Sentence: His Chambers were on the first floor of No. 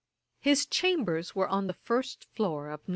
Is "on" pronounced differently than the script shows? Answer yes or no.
no